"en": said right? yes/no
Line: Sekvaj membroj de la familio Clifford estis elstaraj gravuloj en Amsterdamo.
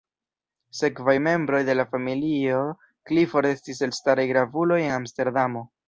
yes